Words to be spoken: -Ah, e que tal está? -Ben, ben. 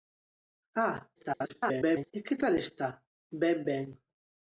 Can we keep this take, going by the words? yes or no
no